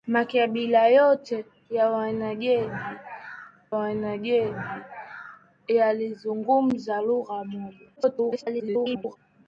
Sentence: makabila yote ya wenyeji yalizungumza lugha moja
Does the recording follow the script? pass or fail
fail